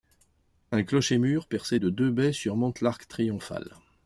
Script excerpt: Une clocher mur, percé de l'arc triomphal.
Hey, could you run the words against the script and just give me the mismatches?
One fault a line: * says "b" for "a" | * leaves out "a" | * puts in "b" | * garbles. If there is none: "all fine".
* says "Un" for "Une"
* puts in "deux baies surmonte"